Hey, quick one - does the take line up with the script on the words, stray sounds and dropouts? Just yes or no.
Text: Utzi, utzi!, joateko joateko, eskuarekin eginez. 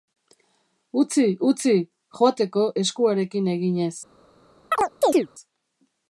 no